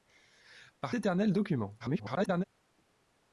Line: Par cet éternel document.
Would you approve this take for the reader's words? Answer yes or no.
no